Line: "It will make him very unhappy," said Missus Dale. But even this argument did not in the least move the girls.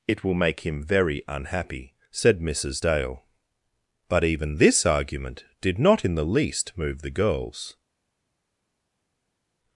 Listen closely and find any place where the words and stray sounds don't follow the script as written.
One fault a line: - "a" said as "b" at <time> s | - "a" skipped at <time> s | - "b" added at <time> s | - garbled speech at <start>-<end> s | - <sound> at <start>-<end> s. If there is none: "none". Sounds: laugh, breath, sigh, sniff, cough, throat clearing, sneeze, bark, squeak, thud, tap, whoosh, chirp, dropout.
none